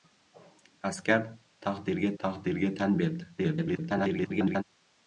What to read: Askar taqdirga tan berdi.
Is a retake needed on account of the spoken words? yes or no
yes